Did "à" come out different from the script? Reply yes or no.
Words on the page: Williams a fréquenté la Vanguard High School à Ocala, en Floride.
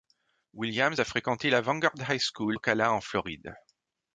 yes